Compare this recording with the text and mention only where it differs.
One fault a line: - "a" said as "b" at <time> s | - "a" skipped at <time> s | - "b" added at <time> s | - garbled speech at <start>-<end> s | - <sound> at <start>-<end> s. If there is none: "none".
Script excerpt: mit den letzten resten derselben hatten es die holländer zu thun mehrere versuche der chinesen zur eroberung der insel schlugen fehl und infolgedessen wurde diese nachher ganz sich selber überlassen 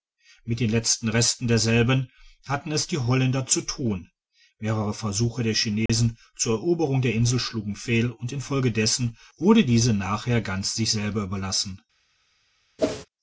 - dropout at 5.9-5.9 s
- whoosh at 12.8-13.1 s